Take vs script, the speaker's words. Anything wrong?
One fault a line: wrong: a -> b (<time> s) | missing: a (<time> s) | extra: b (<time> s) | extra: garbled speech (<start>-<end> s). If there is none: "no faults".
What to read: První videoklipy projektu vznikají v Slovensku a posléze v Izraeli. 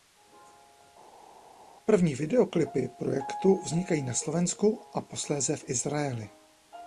wrong: v -> na (4.0 s)